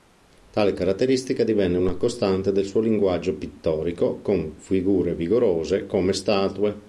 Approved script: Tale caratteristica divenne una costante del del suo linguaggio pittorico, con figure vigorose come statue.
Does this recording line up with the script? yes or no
no